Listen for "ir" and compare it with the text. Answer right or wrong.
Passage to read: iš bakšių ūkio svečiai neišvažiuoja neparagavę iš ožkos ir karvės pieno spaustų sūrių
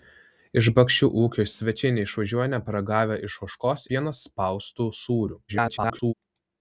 wrong